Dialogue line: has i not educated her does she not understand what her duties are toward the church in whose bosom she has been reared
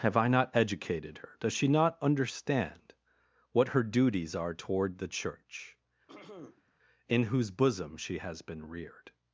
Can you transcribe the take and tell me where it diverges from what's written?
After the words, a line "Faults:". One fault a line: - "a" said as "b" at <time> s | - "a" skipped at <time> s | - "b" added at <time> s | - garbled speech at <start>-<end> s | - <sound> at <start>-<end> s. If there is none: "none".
have i not educated her does she not understand what her duties are toward the church in whose bosom she has been reared
Faults:
- "has" said as "have" at 0.0 s
- throat clearing at 6.1-6.7 s